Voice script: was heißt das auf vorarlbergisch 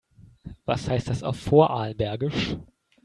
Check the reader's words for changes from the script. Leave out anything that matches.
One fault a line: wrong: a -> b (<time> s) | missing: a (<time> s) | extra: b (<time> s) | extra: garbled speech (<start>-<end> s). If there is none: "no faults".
no faults